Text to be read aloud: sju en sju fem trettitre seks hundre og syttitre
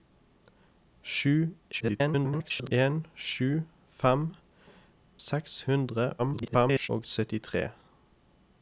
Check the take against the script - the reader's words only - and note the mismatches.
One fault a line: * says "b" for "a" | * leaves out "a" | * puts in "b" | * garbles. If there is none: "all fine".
* garbles
* leaves out "trettitre"
* garbles